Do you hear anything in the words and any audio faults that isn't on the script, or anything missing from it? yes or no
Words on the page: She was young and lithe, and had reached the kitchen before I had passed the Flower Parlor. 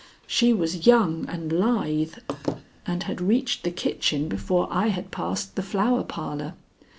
yes